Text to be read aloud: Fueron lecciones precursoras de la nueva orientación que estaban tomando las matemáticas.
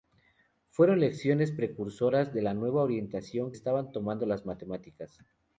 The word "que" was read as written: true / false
false